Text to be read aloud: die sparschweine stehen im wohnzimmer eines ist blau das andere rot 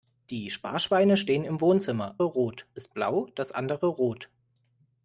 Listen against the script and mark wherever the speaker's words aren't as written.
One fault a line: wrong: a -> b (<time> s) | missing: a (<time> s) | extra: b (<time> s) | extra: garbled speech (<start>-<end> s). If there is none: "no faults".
wrong: eines -> rot (2.2 s)